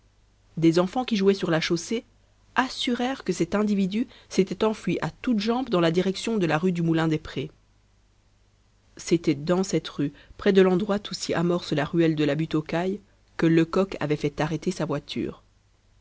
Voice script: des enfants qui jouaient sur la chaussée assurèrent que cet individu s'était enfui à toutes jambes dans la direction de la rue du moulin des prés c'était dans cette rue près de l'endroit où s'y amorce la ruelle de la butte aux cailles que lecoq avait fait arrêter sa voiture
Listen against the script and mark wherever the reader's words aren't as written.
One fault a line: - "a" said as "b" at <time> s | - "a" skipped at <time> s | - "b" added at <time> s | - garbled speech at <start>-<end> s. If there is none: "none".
none